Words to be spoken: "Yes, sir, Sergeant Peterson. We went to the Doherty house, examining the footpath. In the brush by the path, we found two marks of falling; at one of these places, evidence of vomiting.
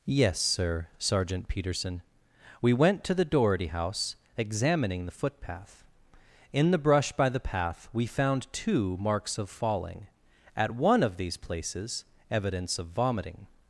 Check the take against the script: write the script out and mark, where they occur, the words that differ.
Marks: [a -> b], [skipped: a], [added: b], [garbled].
"Yes, sir, Sergeant Peterson. We went to the Doherty house, examining the footpath. In the brush by the path, we found two marks of falling; at one of these places, evidence of vomiting.